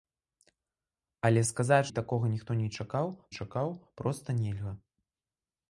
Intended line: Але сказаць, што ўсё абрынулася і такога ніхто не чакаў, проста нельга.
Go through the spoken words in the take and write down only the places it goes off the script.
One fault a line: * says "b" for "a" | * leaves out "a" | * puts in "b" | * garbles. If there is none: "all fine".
* leaves out "што ўсё абрынулася"
* puts in "чакаў"